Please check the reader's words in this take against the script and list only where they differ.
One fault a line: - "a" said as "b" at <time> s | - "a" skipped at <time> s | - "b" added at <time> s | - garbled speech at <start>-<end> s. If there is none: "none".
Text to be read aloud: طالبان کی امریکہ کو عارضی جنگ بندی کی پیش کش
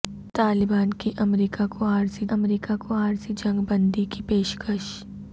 - "امریکہ کو عارضی" added at 2.3 s